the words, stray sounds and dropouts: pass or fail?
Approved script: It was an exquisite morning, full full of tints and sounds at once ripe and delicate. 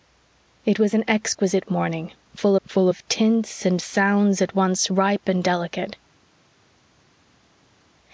pass